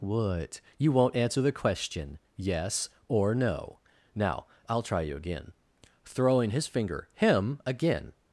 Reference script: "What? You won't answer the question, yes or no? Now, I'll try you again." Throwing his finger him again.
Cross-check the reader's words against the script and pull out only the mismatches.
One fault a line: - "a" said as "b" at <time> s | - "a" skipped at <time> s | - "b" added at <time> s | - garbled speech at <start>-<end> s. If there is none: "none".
none